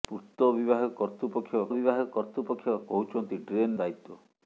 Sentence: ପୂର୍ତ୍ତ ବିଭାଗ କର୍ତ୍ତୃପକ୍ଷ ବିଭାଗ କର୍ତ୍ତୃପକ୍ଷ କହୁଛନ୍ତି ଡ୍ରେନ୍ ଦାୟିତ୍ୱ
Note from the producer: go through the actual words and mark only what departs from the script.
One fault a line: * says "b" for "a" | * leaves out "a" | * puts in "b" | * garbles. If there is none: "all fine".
all fine